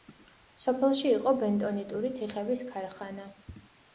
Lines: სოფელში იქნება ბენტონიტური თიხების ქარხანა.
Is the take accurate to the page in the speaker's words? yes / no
no